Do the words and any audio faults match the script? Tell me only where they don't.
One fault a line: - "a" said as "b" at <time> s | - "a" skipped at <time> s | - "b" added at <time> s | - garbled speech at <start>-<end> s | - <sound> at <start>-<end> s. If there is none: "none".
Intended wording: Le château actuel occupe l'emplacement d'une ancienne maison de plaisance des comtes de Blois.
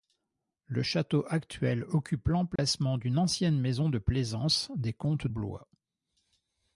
- dropout at 2.6-2.6 s
- "de" skipped at 5.3 s